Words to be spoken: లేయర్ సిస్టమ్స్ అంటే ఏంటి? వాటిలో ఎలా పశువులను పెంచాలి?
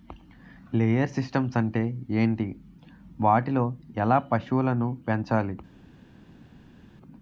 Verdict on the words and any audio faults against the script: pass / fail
pass